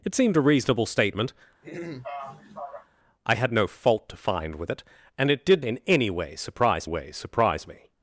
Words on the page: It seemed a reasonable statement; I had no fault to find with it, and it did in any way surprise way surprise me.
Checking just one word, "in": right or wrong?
right